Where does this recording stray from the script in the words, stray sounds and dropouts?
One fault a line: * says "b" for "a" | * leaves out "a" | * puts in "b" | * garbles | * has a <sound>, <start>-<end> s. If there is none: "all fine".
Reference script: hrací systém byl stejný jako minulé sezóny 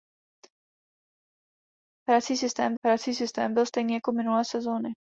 * puts in "hrací systém"